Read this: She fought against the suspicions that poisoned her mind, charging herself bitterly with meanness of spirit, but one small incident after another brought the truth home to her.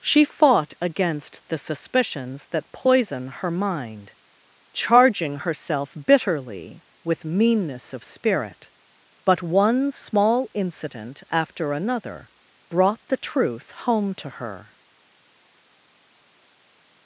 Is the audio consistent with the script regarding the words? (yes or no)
no